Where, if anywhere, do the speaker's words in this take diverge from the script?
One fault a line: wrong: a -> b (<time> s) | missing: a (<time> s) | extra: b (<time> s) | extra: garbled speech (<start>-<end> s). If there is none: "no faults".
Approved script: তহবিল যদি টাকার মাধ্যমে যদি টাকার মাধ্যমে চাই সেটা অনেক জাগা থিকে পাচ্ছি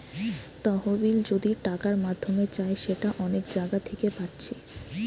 missing: যদি টাকার মাধ্যমে (2.4 s)